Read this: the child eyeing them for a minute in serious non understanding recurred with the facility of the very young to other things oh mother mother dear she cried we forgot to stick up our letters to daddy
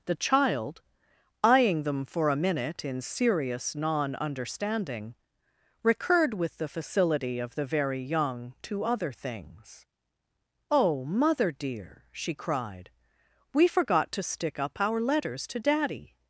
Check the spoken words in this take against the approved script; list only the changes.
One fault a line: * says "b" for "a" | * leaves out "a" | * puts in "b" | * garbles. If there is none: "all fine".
* leaves out "mother"